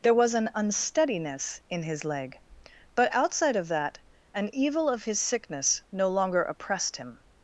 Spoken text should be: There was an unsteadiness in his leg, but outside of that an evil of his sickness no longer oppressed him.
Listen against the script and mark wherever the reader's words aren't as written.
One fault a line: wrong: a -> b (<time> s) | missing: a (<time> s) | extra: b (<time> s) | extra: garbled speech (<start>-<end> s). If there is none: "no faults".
no faults